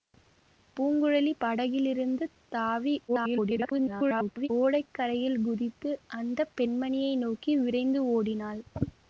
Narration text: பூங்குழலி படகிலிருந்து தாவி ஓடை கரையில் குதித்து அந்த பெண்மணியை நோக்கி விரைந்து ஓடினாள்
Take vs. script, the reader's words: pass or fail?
fail